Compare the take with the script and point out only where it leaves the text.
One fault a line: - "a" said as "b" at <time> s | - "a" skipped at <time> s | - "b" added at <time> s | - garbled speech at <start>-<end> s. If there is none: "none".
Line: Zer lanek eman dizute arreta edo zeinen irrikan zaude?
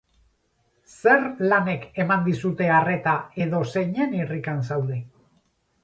none